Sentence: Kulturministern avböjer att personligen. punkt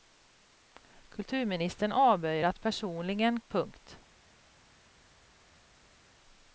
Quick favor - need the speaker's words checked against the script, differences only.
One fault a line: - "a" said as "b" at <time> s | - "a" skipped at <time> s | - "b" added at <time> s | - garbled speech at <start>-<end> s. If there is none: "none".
none